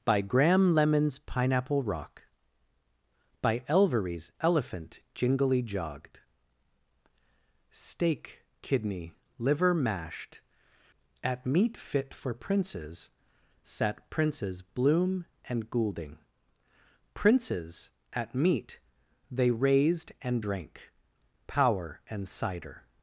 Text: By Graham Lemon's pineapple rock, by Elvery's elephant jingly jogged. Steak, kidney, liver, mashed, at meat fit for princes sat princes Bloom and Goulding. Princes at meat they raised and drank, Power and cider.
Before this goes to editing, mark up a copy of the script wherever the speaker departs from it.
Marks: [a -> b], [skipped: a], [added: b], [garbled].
By Graham Lemon's pineapple rock, by Elvery's elephant jingly jogged. Steak, kidney, liver, mashed, at meat fit for princes sat princes Bloom and Goulding. Princes at meat they raised and drank, Power and cider.